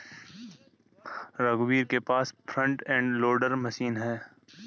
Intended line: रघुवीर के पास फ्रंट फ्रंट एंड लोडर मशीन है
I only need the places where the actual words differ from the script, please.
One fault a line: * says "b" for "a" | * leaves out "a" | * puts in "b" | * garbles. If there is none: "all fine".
* leaves out "फ्रंट"